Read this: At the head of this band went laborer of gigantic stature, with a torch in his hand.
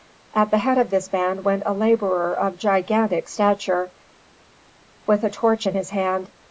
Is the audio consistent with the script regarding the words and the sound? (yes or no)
no